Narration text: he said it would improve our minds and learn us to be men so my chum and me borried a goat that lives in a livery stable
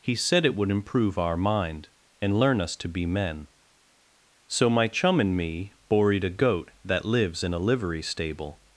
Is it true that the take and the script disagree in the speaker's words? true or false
true